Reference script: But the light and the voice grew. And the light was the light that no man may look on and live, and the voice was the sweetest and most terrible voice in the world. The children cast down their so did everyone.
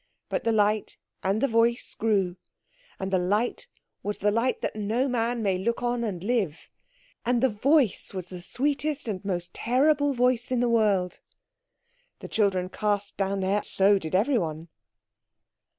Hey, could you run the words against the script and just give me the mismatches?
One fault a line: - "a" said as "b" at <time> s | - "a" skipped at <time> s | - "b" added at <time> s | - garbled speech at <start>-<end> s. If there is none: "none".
none